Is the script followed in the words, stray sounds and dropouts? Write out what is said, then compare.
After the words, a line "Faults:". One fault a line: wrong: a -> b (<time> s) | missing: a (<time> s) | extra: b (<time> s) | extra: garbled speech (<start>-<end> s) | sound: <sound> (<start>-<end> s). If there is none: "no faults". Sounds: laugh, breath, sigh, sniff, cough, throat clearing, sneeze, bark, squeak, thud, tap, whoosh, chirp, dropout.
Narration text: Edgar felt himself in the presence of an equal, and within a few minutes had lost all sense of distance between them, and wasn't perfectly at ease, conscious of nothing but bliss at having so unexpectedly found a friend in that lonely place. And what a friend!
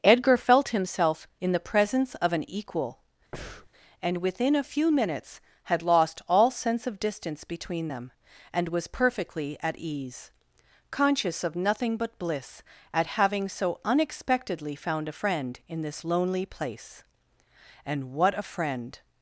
Edgar felt himself in the presence of an equal, and within a few minutes had lost all sense of distance between them, and was perfectly at ease, conscious of nothing but bliss at having so unexpectedly found a friend in this lonely place. And what a friend!
Faults:
sound: breath (3.3-3.7 s)
wrong: wasn't -> was (8.7 s)
wrong: that -> this (15.8 s)